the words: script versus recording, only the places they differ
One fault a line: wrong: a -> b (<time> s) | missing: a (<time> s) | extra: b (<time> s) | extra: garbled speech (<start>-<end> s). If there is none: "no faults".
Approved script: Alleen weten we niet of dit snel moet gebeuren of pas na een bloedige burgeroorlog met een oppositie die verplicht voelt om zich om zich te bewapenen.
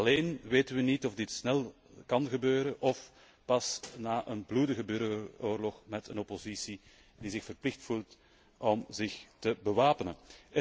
wrong: moet -> kan (2.0 s)
extra: zich (7.3 s)
missing: om zich (9.2 s)